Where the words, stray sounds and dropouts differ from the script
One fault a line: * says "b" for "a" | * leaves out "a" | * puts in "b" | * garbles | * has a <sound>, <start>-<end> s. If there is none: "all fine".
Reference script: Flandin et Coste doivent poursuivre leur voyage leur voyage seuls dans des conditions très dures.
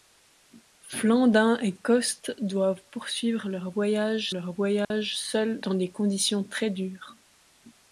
* has a dropout, 4.8-4.9 s